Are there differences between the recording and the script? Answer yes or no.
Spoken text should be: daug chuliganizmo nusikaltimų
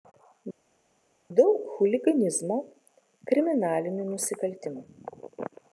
yes